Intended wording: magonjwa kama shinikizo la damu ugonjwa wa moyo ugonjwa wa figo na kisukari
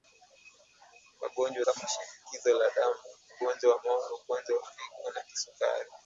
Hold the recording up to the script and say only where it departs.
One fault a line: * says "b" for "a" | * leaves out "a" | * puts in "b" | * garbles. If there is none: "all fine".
all fine